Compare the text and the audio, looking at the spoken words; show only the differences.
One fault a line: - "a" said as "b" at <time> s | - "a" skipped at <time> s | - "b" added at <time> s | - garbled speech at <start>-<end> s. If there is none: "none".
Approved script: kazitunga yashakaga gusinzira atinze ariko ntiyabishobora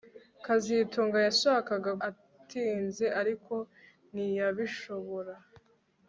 - "gusinzira" skipped at 1.9 s